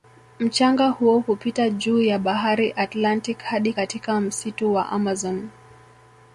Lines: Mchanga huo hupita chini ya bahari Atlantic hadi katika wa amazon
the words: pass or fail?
fail